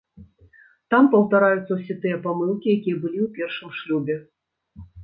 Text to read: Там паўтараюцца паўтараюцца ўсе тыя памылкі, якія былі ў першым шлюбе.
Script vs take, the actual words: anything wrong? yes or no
yes